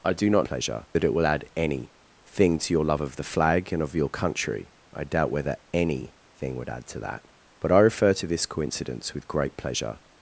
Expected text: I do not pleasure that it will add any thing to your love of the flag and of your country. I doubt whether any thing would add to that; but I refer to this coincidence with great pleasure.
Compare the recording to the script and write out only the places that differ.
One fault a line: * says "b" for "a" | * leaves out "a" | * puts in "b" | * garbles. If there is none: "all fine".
all fine